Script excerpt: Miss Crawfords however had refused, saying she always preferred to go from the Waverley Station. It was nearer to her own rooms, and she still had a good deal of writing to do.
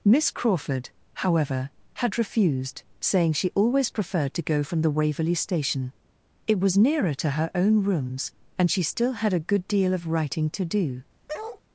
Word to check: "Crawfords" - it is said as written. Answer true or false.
false